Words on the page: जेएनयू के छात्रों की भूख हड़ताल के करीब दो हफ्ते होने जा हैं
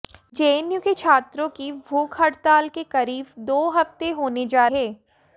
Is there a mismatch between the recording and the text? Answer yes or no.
no